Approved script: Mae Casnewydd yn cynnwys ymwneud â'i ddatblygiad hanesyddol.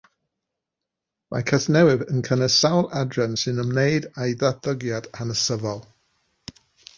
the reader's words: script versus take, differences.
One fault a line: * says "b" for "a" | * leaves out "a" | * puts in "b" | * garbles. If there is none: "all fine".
* puts in "sawl adran sy'n"